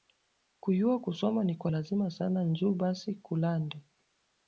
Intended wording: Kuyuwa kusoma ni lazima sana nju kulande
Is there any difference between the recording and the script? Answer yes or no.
yes